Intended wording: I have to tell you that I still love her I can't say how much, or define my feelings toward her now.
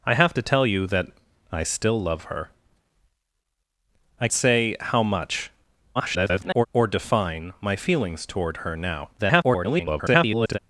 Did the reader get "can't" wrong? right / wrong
wrong